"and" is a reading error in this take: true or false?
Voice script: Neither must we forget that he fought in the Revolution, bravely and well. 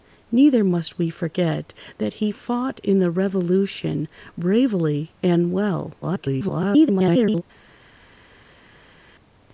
false